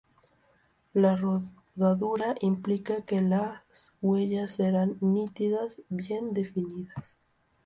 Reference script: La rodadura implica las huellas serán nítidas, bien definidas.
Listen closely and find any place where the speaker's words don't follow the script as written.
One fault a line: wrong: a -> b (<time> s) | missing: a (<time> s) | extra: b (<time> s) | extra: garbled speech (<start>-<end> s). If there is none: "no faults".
extra: que (3.0 s)